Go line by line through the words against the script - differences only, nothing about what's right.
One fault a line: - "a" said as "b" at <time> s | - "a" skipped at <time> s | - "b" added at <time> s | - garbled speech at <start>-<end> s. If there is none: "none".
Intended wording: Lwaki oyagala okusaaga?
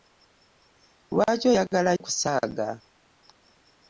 none